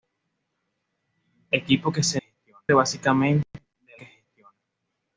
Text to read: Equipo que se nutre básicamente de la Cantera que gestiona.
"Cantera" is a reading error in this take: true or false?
true